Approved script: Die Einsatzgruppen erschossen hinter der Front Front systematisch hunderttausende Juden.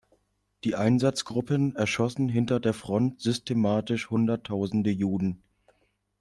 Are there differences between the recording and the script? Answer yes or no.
yes